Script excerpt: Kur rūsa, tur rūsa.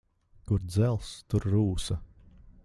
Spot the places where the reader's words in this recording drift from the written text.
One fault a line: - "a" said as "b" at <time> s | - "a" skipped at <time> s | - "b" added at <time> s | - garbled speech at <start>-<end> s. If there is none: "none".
- "rūsa" said as "dzelzs" at 0.6 s